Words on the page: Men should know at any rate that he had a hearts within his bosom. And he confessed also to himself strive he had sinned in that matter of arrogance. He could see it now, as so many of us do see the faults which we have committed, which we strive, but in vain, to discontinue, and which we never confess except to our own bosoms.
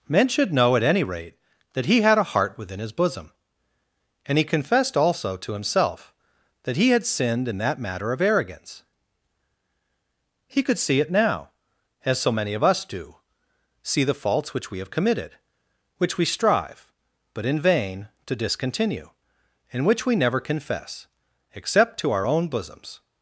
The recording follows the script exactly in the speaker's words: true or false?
false